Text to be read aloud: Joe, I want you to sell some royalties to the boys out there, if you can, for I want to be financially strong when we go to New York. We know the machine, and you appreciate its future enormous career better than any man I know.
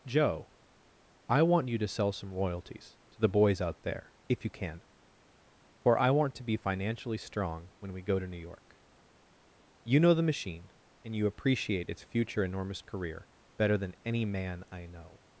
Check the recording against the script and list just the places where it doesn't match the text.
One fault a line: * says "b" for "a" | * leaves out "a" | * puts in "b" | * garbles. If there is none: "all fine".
* says "You" for "We"